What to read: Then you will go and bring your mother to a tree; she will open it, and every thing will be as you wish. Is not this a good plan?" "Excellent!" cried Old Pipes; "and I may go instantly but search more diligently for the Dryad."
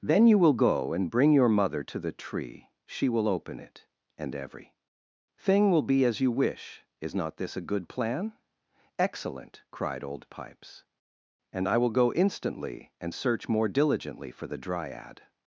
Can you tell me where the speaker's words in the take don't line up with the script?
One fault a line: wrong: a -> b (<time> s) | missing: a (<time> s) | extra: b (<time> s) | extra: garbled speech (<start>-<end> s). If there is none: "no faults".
wrong: a -> the (2.0 s)
wrong: may -> will (11.8 s)
wrong: but -> and (13.0 s)